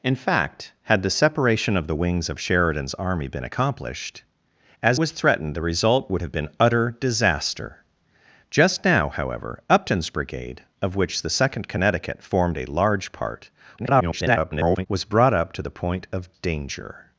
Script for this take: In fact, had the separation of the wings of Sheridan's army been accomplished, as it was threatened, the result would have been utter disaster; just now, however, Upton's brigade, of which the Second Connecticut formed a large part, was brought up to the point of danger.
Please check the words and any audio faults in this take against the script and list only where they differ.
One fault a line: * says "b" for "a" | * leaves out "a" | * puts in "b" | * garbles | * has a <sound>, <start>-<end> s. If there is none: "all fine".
* leaves out "it"
* garbles